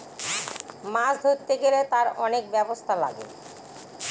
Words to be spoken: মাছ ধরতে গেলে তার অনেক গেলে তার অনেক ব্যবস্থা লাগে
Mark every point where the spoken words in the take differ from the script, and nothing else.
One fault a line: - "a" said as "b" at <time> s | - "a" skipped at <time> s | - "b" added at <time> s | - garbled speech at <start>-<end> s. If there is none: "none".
- "গেলে তার অনেক" skipped at 2.4 s